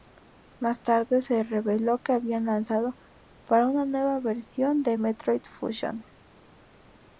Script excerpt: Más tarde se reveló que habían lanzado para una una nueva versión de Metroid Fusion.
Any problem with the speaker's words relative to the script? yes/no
yes